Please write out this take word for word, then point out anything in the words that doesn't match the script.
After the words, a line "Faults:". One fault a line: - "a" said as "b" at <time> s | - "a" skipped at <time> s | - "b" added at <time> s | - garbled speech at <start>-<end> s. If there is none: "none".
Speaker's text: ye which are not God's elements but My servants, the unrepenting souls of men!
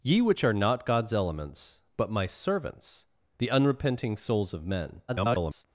ye which are not God's elements but My servants, the unrepenting souls of men! [garbled]
Faults:
- garbled speech at 5.1-5.6 s